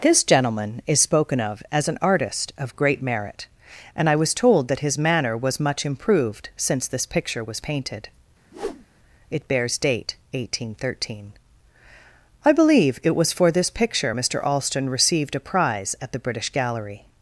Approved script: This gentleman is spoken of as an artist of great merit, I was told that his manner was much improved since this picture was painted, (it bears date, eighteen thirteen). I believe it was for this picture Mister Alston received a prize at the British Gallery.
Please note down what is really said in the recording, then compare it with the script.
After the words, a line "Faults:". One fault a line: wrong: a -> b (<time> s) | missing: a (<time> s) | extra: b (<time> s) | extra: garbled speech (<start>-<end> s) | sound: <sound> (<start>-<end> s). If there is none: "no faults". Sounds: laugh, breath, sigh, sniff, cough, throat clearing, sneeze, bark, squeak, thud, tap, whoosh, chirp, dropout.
This gentleman is spoken of as an artist of great merit, and I was told that his manner was much improved since this picture was painted, (it bears date, eighteen thirteen). I believe it was for this picture Mister Alston received a prize at the British Gallery.
Faults:
extra: and (4.0 s)
sound: whoosh (8.5-8.9 s)